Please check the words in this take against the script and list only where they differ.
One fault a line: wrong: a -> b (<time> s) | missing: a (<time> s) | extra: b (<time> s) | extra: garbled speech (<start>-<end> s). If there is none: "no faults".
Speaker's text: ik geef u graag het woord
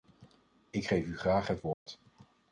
no faults